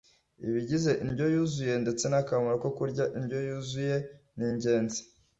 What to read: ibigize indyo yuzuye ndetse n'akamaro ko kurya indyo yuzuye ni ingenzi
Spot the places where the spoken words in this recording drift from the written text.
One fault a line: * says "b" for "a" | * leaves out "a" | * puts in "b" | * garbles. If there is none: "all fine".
all fine